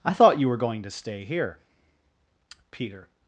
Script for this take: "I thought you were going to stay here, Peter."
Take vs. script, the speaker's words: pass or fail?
pass